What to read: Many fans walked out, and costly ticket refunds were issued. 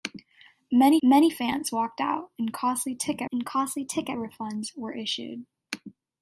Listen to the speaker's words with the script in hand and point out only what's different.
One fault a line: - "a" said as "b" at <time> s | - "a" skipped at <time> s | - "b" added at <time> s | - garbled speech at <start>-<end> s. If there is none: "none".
- "many" added at 1.0 s
- "and costly ticket" added at 3.3 s